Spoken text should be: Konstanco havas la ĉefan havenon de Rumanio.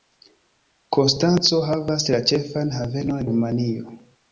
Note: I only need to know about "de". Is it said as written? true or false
false